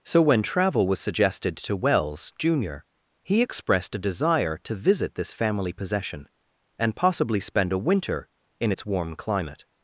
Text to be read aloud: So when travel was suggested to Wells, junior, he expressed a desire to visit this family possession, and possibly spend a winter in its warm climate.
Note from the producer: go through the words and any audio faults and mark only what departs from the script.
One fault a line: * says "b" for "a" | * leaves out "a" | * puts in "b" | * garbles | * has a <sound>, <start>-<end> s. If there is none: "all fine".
all fine